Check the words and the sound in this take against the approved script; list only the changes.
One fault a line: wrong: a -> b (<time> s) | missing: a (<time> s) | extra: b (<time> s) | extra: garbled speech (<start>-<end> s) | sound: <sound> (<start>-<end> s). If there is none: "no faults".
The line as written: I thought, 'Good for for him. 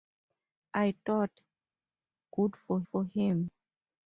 no faults